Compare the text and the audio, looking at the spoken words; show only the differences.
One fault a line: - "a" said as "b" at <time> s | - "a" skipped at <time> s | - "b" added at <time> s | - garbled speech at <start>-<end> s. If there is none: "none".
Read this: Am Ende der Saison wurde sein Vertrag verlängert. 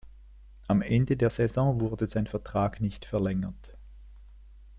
- "nicht" added at 2.8 s